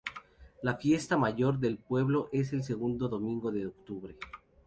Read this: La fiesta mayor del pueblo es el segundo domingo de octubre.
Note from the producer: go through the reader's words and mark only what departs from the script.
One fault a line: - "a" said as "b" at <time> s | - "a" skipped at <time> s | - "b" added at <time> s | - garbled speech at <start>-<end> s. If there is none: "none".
none